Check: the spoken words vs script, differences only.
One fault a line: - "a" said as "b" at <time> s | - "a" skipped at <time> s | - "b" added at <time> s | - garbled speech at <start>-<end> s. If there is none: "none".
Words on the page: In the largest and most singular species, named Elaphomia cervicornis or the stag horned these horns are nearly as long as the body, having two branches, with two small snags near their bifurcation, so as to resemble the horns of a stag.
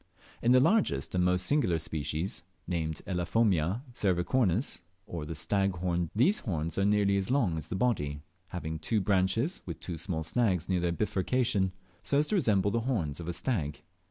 none